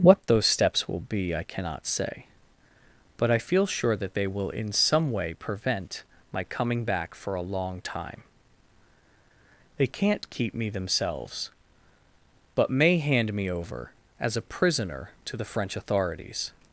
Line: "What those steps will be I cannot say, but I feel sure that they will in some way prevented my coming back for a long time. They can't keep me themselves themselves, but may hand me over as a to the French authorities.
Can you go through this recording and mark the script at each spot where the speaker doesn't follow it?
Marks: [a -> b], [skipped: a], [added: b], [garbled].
"What those steps will be I cannot say, but I feel sure that they will in some way [prevented -> prevent] my coming back for a long time. They can't keep me themselves [skipped: themselves,] but may hand me over as a [added: prisoner] to the French authorities.